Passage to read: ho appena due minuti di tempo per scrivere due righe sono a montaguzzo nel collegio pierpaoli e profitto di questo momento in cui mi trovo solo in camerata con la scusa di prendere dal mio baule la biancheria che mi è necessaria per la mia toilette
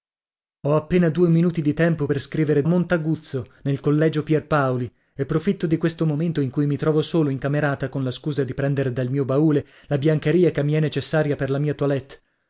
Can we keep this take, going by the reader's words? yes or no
no